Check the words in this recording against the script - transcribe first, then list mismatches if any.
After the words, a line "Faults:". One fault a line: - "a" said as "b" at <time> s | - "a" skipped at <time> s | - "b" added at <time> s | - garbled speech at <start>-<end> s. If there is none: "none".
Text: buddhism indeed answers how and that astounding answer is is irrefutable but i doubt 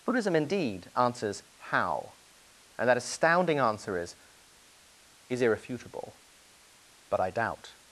buddhism indeed answers how and that astounding answer is is irrefutable but i doubt
Faults:
none